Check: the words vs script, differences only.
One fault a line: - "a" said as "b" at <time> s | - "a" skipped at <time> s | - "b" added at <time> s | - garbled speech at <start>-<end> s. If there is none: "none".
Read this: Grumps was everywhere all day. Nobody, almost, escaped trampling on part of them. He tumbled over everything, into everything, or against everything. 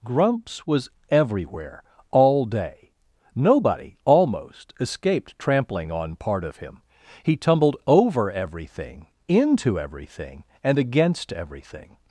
- "them" said as "him" at 6.6 s
- "or" said as "and" at 10.6 s